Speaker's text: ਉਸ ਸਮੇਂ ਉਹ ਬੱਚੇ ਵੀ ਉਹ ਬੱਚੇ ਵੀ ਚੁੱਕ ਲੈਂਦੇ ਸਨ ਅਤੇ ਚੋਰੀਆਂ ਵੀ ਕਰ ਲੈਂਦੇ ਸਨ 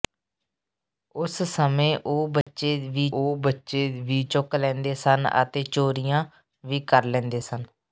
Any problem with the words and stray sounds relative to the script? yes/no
yes